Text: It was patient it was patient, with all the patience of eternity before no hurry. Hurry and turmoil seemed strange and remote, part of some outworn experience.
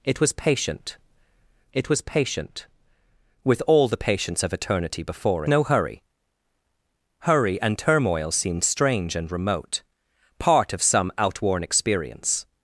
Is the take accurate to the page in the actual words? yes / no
yes